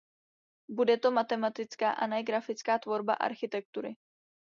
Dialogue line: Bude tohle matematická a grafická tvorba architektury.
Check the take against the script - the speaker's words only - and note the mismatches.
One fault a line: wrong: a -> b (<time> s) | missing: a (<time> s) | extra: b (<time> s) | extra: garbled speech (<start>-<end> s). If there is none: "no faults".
wrong: tohle -> to (1.0 s)
extra: ne (2.1 s)